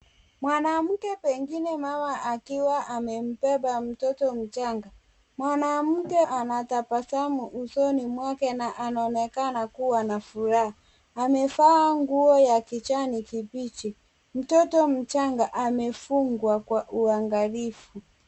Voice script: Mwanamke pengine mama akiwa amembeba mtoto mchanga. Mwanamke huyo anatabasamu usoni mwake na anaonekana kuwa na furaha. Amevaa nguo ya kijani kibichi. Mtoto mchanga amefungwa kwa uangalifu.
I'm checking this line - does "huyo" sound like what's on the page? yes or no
no